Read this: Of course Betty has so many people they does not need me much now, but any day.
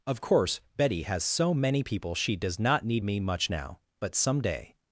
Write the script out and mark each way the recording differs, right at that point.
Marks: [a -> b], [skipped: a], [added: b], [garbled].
Of course Betty has so many people [they -> she] does not need me much now, but [any -> some] day.